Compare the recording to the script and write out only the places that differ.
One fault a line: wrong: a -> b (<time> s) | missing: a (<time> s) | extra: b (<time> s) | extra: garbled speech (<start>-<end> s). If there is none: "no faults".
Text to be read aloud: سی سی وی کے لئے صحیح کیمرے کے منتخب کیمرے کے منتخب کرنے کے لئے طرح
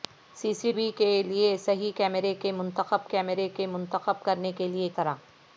no faults